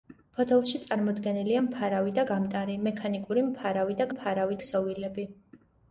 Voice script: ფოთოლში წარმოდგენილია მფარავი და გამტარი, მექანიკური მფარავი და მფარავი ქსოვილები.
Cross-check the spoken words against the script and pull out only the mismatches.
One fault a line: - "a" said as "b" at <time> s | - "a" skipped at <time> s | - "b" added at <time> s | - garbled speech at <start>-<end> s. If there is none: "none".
none